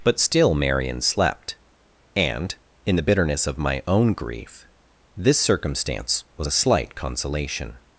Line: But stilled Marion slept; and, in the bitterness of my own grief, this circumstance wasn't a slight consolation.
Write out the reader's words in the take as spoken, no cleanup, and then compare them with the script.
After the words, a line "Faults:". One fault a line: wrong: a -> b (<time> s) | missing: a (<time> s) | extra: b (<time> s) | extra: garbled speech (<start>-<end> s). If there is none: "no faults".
But still Marion slept; and, in the bitterness of my own grief, this circumstance was a slight consolation.
Faults:
wrong: stilled -> still (0.2 s)
wrong: wasn't -> was (6.4 s)